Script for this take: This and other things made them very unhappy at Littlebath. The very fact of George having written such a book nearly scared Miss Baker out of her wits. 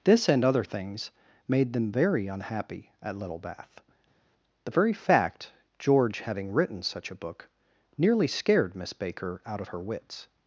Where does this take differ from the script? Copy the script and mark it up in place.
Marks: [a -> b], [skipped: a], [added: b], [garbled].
This and other things made them very unhappy at Littlebath. The very fact [skipped: of] George having written such a book nearly scared Miss Baker out of her wits.